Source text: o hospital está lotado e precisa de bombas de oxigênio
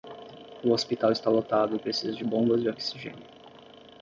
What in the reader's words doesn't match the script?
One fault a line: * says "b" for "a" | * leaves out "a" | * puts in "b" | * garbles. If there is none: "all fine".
all fine